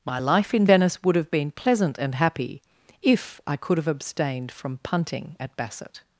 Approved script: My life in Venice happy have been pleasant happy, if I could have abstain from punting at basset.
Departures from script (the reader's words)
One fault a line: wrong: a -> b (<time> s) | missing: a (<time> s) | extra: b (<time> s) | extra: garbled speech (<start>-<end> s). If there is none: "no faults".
wrong: happy -> would (1.0 s)
extra: and (2.0 s)
wrong: abstain -> abstained (3.9 s)